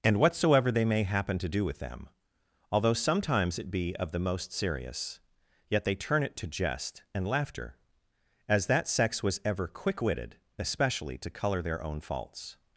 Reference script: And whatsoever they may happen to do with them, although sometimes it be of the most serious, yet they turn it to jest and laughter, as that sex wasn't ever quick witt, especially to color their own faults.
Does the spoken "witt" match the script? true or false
false